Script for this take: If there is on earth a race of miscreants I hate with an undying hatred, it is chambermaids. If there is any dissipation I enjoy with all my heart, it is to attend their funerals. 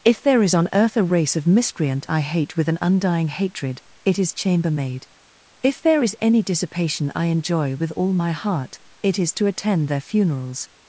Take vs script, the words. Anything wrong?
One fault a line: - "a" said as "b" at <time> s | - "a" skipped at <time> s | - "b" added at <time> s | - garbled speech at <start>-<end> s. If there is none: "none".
- "miscreants" said as "miscreant" at 1.5 s
- "chambermaids" said as "chambermaid" at 4.3 s